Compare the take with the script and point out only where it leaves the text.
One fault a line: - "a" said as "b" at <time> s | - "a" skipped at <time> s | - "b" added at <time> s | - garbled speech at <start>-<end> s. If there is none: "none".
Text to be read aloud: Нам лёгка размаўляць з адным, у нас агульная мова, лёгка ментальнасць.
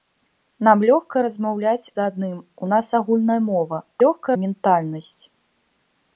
none